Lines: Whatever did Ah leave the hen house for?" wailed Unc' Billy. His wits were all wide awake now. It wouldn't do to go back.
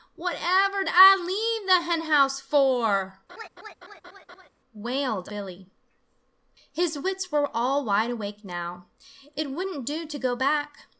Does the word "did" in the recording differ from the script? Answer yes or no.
yes